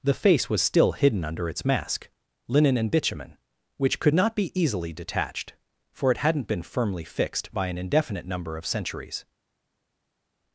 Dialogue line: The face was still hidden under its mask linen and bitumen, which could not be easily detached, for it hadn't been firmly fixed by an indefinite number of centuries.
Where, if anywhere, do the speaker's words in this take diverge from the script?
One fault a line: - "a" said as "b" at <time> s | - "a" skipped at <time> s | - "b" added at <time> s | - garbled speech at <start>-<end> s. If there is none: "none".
none